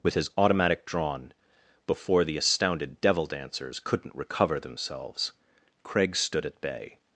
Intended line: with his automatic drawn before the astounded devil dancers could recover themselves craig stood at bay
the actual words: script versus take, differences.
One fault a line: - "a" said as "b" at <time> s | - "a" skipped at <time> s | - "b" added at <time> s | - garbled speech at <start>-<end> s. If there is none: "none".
- "could" said as "couldn't" at 3.8 s